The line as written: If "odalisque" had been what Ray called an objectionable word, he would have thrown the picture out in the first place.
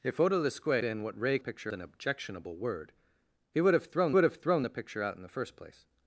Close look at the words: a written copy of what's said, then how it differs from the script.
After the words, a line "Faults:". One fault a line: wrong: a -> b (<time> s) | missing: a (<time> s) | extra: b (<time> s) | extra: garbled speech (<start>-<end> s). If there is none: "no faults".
If "odalisque" been what Ray picture an objectionable word, he would have thrown would have thrown the picture out in the first place.
Faults:
missing: had (0.8 s)
wrong: called -> picture (1.4 s)
extra: would have thrown (4.1 s)